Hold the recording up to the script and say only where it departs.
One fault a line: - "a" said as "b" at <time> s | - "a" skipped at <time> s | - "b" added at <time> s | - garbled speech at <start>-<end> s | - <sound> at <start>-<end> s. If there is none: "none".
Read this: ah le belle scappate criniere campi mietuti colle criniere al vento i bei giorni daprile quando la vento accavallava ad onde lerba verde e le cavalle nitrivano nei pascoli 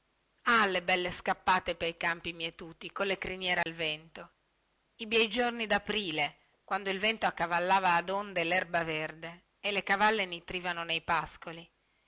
- "criniere" said as "pei" at 1.8 s
- dropout at 3.6-3.7 s
- "la" said as "il" at 6.9 s